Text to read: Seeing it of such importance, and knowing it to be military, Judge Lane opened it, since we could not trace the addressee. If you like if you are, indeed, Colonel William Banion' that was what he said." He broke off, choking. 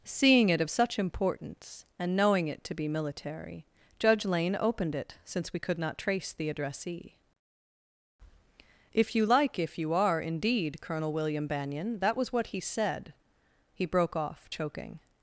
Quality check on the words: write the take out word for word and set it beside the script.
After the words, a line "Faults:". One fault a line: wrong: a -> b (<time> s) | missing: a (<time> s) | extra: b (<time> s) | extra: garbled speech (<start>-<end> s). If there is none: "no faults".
Seeing it of such importance, and knowing it to be military, Judge Lane opened it, since we could not trace the addressee. If you like if you are, indeed, Colonel William Banion' that was what he said." He broke off, choking.
Faults:
no faults